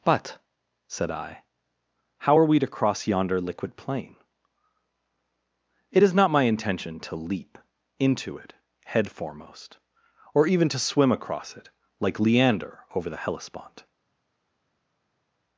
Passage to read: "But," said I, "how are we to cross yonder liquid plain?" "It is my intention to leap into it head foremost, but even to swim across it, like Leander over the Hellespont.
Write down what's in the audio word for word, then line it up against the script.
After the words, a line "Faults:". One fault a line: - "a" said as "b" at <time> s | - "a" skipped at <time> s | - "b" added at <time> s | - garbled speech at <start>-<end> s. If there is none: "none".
"But," said I, "how are we to cross yonder liquid plain?" "It is not my intention to leap into it head foremost, or even to swim across it, like Leander over the Hellespont.
Faults:
- "not" added at 6.1 s
- "but" said as "or" at 10.3 s